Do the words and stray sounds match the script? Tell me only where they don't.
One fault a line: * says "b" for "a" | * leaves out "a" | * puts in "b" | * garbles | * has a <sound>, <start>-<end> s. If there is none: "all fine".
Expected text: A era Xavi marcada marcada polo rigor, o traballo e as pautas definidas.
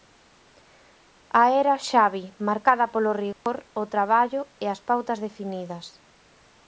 * leaves out "marcada"
* has a dropout, 3.3-3.5 s